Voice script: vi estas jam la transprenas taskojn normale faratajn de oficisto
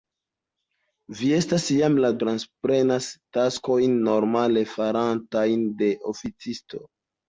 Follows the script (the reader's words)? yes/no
yes